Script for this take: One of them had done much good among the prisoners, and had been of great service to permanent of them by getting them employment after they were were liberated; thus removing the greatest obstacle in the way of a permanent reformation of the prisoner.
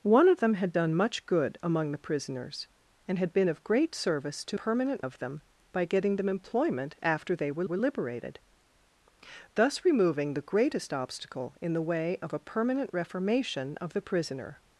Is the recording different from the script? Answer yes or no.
no